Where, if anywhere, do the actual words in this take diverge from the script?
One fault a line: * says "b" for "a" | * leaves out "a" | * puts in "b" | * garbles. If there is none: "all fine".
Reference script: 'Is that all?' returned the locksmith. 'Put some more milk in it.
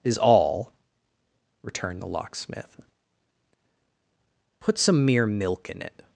* leaves out "that"
* says "mere" for "more"